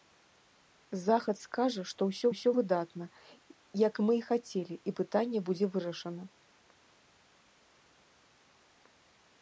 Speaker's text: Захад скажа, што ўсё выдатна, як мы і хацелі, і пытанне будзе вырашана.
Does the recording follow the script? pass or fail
fail